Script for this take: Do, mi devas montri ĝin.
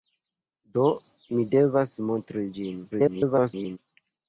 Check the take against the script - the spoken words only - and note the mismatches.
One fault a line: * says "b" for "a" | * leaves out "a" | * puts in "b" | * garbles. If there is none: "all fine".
* garbles